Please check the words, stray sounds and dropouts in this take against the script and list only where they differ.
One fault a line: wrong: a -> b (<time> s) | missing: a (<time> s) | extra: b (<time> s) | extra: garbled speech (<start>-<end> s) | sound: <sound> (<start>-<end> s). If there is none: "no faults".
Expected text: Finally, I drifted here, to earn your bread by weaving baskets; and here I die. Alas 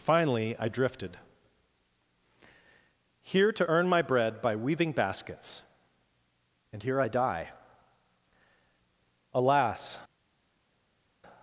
wrong: your -> my (3.9 s)